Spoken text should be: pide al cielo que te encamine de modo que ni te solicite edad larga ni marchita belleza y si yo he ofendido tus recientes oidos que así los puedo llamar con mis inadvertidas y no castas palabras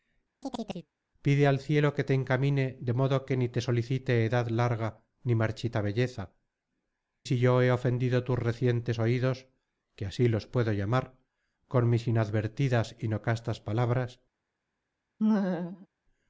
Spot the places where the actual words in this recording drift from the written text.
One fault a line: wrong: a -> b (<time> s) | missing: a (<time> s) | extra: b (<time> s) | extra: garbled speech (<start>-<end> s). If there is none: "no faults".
missing: y (6.3 s)